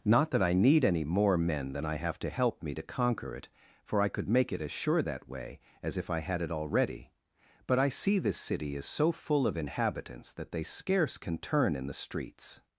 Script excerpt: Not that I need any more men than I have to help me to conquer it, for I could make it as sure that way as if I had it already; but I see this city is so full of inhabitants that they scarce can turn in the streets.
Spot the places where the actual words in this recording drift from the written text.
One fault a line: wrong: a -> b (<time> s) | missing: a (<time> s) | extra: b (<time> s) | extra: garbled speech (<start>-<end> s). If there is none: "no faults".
no faults